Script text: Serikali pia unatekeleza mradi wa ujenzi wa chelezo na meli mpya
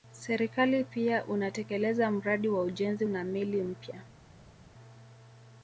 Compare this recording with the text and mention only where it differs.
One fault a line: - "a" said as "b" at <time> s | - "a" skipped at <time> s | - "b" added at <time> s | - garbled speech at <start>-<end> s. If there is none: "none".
- "wa chelezo" skipped at 3.0 s